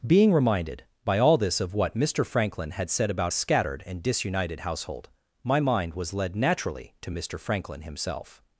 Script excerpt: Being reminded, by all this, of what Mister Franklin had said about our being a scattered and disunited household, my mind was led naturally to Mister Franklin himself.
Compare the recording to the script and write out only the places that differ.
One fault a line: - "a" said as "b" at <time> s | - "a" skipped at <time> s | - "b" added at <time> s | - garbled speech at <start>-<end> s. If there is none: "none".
- "our being" skipped at 3.3 s